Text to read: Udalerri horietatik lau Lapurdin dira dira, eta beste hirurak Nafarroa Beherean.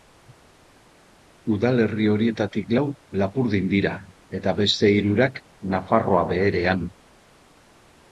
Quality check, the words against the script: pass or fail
fail